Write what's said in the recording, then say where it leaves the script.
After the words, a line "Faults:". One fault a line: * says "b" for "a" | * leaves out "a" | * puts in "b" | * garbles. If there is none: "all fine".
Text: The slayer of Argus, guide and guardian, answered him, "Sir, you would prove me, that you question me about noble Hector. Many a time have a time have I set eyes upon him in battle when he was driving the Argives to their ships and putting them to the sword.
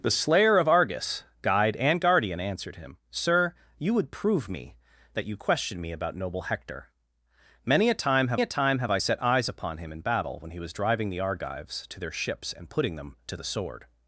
The slayer of Argus, guide and guardian, answered him, "Sir, you would prove me, that you question me about noble Hector. Many a time have a time have I set eyes upon him in battle when he was driving the Argives to their ships and putting them to the sword.
Faults:
all fine